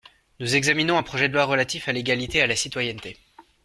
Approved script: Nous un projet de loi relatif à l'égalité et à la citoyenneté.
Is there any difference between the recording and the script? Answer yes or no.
yes